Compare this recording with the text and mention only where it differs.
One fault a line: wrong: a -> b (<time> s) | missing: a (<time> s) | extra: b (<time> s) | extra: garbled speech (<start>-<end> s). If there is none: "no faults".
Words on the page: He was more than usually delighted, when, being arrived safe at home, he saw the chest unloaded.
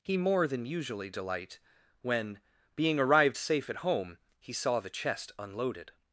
missing: was (0.2 s)
wrong: delighted -> delight (1.1 s)